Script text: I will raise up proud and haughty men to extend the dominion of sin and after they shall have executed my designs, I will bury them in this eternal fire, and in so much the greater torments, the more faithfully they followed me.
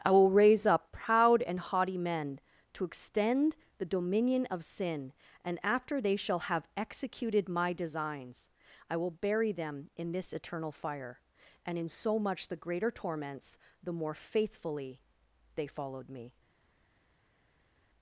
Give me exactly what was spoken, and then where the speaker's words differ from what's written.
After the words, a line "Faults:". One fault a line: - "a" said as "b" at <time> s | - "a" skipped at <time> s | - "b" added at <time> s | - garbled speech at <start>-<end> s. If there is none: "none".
I will raise up proud and haughty men to extend the dominion of sin and after they shall have executed my designs, I will bury them in this eternal fire, and in so much the greater torments, the more faithfully they followed me.
Faults:
none